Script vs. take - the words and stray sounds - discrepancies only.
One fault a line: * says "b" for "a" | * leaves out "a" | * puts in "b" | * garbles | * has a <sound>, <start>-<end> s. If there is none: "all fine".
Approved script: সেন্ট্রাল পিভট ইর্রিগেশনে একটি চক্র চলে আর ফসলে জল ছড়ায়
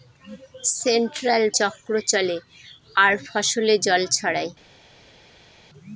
* leaves out "পিভট ইর্রিগেশনে একটি"